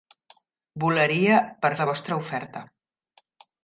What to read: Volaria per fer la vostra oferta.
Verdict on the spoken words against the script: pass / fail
fail